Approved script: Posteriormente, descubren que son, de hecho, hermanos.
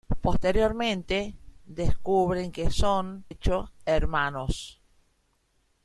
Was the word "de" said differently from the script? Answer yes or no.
yes